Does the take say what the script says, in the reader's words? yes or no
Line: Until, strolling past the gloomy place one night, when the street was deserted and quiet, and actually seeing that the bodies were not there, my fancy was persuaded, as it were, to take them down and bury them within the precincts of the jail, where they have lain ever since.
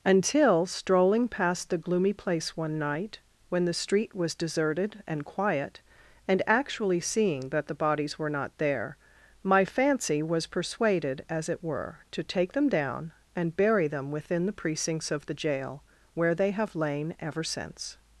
yes